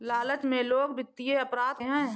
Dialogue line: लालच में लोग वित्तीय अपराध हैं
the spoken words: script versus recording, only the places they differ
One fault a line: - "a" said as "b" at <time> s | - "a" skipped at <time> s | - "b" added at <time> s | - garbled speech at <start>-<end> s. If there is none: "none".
none